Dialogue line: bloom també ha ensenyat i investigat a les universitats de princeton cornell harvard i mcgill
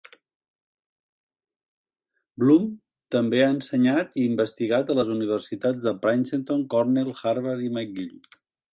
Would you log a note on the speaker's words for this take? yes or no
no